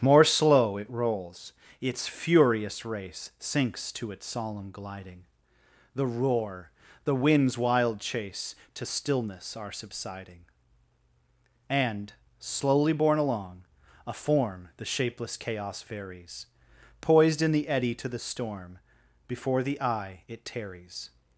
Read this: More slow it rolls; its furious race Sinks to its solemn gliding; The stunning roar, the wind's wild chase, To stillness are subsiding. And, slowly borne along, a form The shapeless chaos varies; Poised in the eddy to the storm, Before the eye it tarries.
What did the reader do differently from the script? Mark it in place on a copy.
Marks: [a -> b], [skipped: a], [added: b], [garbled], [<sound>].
More slow it rolls; its furious race Sinks to its solemn gliding; The [skipped: stunning] roar, the wind's wild chase, To stillness are subsiding. And, slowly borne along, a form The shapeless chaos varies; Poised in the eddy to the storm, Before the eye it tarries.